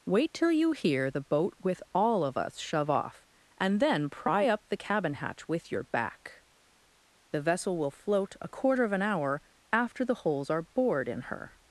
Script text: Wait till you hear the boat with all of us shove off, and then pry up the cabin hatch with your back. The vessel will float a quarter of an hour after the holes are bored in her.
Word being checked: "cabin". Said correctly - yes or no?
yes